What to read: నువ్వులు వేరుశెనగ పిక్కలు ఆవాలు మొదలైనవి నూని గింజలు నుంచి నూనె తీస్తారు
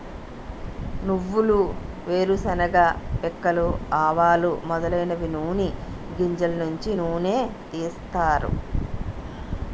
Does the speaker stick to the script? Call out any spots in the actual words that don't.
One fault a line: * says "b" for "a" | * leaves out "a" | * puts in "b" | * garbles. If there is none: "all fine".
all fine